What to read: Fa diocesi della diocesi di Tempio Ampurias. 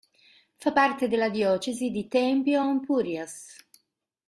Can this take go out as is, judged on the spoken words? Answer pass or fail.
fail